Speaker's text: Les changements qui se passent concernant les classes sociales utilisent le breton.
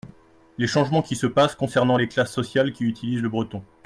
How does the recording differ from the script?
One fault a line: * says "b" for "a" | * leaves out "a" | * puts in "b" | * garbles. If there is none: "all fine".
* puts in "qui"